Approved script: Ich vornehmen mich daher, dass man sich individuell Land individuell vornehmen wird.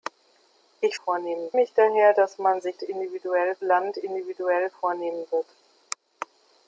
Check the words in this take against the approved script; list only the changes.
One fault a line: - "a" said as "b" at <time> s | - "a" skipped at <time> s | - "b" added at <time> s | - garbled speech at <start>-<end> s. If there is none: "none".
none